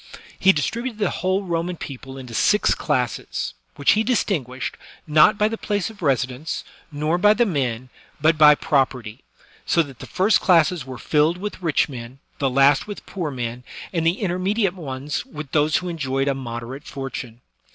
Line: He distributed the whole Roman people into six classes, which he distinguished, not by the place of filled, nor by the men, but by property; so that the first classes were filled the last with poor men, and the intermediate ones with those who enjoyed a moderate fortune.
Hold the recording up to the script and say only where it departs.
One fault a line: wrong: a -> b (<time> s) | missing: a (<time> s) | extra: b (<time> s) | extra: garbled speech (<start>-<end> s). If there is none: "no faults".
wrong: filled -> residence (6.0 s)
extra: with rich men (11.4 s)